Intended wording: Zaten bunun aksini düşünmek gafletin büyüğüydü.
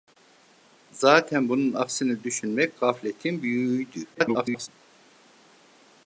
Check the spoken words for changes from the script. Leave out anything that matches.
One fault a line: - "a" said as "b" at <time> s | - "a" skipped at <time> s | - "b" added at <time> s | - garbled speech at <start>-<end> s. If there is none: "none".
- garbled speech at 4.1-4.7 s